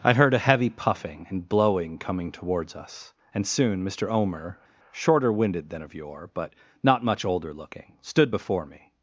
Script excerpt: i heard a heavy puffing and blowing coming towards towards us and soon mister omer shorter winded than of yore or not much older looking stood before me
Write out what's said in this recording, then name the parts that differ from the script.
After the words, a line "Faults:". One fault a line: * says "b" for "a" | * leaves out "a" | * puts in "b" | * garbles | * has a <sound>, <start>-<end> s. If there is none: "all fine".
i heard a heavy puffing and blowing coming towards us and soon mister omer shorter winded than of yore but not much older looking stood before me
Faults:
* leaves out "towards"
* says "but" for "or"